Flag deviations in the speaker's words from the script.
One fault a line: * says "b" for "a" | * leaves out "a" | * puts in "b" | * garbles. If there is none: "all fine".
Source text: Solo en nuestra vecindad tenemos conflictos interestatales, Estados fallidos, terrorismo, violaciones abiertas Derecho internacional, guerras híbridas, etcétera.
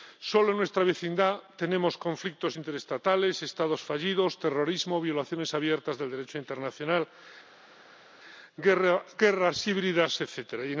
* puts in "del"